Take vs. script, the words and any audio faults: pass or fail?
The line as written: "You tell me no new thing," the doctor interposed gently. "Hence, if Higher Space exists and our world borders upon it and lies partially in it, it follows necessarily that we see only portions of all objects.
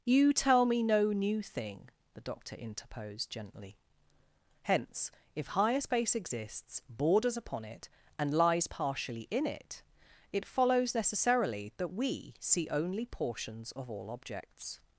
fail